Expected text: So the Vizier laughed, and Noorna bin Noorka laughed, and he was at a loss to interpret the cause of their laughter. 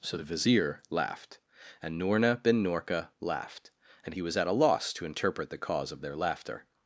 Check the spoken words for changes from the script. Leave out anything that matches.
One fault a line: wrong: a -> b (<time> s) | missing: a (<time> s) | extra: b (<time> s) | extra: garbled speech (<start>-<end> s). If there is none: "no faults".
no faults